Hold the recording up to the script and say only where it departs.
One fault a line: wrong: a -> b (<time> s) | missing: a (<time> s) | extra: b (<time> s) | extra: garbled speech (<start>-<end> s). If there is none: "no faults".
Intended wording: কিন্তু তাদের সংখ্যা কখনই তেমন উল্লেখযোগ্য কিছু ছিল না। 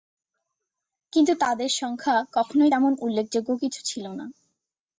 no faults